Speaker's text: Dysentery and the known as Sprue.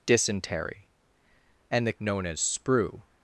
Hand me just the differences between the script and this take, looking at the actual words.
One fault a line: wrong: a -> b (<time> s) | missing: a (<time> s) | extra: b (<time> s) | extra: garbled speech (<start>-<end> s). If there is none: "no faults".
no faults